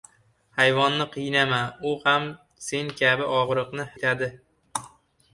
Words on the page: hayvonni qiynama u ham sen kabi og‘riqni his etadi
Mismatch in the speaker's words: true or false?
true